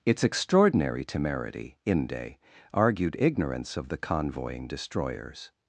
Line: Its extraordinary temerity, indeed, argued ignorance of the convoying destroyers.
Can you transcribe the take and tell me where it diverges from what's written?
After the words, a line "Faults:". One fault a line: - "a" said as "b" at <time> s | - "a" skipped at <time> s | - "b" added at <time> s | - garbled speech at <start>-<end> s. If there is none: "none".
Its extraordinary temerity, inde, argued ignorance of the convoying destroyers.
Faults:
- "indeed" said as "inde" at 1.9 s